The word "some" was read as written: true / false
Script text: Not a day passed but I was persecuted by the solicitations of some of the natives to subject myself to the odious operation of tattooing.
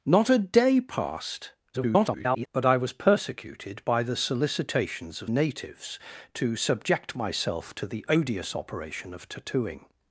false